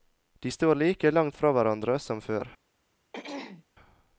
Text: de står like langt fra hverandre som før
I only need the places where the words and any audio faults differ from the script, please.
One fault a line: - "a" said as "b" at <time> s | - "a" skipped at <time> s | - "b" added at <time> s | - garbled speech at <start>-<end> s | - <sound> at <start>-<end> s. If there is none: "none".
- throat clearing at 3.1-3.6 s